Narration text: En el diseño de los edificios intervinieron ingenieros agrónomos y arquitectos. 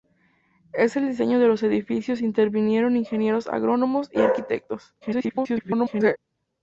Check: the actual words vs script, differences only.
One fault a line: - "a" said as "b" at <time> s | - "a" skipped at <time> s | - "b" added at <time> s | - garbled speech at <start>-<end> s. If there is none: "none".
- garbled speech at 5.0-6.2 s